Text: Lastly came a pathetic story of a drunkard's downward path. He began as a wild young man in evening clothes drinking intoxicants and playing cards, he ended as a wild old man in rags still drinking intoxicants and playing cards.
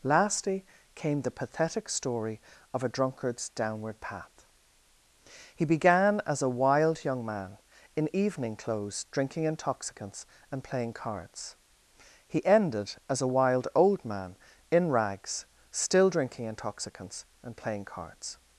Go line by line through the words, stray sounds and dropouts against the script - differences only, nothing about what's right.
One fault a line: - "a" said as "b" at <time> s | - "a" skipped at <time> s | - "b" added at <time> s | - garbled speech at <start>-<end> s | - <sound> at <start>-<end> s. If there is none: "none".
- "a" said as "the" at 1.2 s